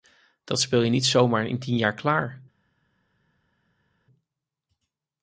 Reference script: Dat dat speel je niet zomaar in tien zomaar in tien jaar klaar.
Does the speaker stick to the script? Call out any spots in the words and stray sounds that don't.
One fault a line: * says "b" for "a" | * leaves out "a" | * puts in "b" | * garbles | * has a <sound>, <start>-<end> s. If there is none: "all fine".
* leaves out "dat"
* leaves out "zomaar in tien"